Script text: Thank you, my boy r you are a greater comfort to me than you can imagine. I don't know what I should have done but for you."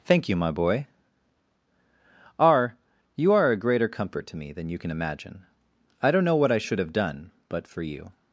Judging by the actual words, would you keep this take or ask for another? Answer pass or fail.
pass